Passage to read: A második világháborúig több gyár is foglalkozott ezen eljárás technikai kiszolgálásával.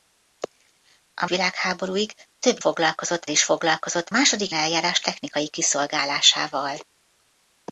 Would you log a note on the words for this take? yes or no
yes